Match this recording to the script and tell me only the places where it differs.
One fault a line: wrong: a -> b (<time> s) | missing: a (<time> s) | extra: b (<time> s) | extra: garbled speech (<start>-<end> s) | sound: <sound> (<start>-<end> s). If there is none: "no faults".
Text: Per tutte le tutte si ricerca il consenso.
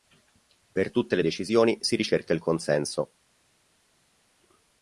wrong: tutte -> decisioni (1.2 s)